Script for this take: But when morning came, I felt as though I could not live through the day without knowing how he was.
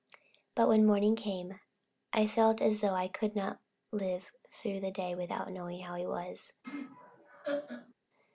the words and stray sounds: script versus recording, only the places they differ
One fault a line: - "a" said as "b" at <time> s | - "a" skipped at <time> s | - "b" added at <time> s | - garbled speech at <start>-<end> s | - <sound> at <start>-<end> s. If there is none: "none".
- laugh at 6.6-7.9 s